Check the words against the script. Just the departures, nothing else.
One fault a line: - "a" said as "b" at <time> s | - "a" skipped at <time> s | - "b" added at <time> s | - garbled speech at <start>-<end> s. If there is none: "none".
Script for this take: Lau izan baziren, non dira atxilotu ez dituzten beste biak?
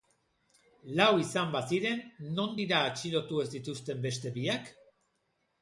none